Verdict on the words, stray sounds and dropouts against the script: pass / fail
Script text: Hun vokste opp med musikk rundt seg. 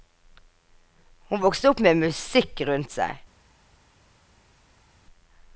pass